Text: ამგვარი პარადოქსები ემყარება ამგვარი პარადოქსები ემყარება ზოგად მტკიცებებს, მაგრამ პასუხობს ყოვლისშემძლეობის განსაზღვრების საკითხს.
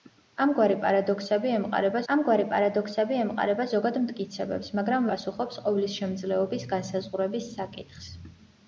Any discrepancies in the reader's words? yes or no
no